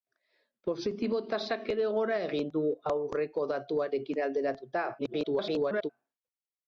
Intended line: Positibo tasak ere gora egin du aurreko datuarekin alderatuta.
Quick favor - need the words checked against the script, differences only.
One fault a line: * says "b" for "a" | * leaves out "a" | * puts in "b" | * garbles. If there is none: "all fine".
* garbles